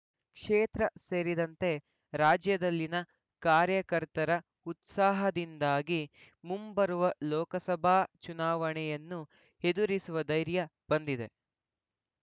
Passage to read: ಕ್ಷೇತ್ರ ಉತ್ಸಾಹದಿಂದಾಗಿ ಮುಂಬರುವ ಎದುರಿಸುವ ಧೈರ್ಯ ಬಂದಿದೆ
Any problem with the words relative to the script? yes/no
yes